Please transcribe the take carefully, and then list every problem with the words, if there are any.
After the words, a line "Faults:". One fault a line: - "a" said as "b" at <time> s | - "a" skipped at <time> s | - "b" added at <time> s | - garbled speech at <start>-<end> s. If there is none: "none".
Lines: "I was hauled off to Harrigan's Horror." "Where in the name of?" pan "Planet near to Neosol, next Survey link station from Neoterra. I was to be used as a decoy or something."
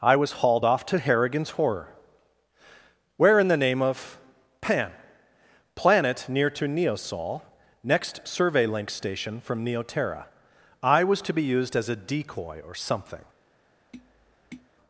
"I was hauled off to Harrigan's Horror." "Where in the name of?" pan "Planet near to Neosol, next Survey link station from Neoterra. I was to be used as a decoy or something."
Faults:
none